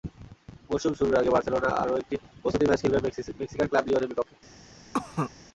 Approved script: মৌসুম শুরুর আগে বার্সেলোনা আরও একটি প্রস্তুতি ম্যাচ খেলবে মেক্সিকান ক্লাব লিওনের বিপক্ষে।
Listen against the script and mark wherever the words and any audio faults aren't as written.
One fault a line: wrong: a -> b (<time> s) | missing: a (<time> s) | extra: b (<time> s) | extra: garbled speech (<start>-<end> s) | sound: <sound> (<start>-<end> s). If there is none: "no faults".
sound: cough (4.9-5.3 s)